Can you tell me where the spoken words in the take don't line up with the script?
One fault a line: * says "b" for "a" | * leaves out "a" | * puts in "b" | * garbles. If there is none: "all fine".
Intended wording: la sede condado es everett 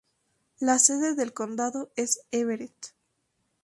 * puts in "del"